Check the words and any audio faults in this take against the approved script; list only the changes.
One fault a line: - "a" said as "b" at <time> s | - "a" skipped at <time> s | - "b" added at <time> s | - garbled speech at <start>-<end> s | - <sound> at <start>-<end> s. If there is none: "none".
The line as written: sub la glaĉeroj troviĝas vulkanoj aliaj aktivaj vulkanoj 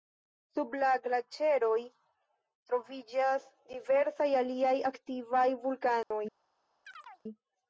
- "vulkanoj" said as "diversaj" at 3.7 s
- dropout at 6.0-6.1 s
- chirp at 6.9-7.2 s